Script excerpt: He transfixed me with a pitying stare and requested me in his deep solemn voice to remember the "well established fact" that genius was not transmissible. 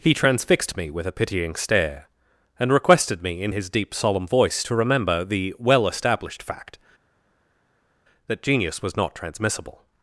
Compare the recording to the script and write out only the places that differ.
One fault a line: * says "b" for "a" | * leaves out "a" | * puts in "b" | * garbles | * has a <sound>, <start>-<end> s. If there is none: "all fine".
all fine